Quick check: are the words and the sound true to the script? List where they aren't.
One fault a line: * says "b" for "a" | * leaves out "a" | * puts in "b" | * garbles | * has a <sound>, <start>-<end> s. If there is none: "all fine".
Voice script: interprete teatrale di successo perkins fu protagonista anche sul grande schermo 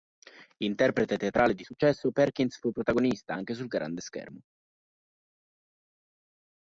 all fine